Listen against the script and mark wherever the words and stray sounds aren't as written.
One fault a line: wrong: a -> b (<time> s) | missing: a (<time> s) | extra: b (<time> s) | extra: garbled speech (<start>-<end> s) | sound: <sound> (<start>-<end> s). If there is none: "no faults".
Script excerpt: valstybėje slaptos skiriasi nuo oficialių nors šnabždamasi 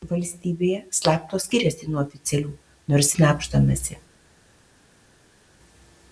no faults